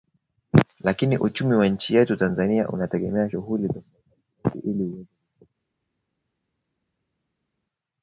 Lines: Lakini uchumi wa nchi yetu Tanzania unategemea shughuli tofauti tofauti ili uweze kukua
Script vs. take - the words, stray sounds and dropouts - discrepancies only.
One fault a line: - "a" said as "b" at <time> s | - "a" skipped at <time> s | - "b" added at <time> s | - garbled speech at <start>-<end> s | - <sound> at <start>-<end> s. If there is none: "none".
none